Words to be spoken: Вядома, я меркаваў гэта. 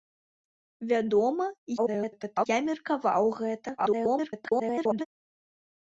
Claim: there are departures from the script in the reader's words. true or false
true